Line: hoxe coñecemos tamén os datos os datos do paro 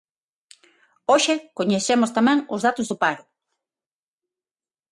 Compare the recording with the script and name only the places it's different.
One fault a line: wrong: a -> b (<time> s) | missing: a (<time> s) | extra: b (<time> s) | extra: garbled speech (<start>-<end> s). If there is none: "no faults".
missing: os datos (2.9 s)